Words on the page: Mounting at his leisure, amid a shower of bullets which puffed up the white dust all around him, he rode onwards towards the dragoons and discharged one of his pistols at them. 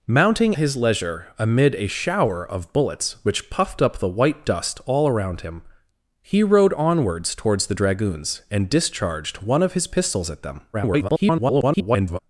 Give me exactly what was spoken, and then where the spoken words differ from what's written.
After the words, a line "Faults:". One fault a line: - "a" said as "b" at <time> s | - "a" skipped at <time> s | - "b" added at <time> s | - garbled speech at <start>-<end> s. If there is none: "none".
Mounting his leisure, amid a shower of bullets which puffed up the white dust all around him, he rode onwards towards the dragoons and discharged one of his pistols at them. [garbled]
Faults:
- "at" skipped at 0.6 s
- garbled speech at 10.7-12.2 s